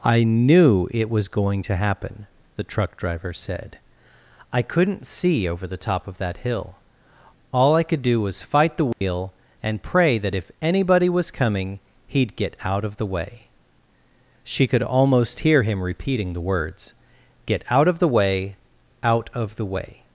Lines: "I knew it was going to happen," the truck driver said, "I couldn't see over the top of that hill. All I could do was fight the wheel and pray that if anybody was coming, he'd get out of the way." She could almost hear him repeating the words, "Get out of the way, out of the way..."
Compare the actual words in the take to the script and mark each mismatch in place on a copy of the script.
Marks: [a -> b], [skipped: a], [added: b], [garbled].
"I knew it was going to happen," the truck driver said, "I couldn't see over the top of that hill. All I could do was fight the wheel and pray that if anybody was coming, he'd get out of the way." She could almost hear him repeating the words, "Get out of the way, out of the way..."